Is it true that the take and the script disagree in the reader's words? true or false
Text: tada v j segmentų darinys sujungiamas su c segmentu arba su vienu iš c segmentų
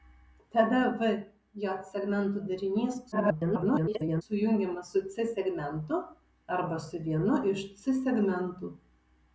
true